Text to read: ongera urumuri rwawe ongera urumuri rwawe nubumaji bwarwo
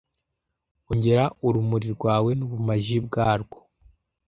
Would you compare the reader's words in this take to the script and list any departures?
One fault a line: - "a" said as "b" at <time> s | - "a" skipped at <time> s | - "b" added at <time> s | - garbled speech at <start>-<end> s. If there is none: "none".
- "ongera urumuri rwawe" skipped at 2.3 s